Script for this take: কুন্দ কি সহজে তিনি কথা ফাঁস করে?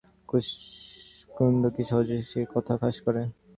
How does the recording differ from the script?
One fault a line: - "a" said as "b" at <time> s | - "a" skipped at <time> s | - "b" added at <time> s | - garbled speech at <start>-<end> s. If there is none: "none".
- "তিনি" said as "সে" at 2.3 s